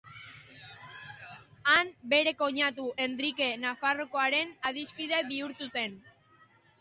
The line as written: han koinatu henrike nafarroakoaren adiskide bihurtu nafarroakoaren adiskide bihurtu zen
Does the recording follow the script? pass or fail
fail